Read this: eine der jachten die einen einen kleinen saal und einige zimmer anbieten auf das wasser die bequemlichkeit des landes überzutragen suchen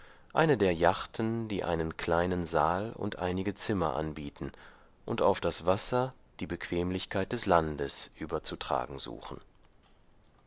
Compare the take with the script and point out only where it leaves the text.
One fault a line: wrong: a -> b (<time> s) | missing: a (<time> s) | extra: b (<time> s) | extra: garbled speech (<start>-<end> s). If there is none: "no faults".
missing: einen (1.9 s)
extra: und (5.0 s)